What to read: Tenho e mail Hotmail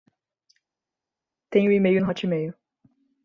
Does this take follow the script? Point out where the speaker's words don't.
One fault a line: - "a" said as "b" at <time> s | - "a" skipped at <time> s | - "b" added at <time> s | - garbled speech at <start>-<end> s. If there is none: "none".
- "no" added at 2.0 s